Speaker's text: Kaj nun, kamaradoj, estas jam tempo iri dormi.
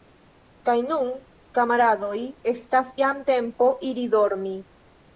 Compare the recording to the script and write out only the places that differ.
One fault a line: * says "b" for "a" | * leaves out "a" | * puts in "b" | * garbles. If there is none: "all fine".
all fine